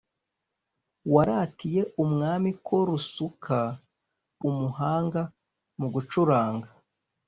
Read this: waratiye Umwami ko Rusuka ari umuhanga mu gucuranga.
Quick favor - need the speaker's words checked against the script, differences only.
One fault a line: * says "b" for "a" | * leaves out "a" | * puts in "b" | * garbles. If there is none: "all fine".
* leaves out "ari"